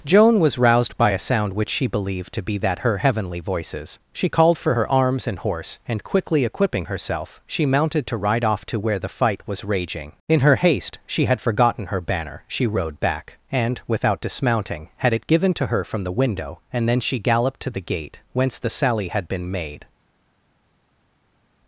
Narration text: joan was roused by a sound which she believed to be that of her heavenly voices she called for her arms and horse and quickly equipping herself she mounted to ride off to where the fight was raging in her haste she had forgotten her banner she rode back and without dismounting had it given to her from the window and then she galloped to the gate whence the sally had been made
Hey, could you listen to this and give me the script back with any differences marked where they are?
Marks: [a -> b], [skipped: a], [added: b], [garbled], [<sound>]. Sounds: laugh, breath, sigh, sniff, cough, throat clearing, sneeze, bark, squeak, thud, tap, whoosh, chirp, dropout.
joan was roused by a sound which she believed to be that [skipped: of] her heavenly voices she called for her arms and horse and quickly equipping herself she mounted to ride off to where the fight was raging in her haste she had forgotten her banner she rode back and without dismounting had it given to her from the window and then she galloped to the gate whence the sally had been made